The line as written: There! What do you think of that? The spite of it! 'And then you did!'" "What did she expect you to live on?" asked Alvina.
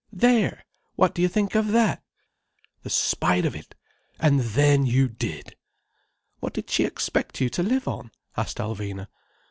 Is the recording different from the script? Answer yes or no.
no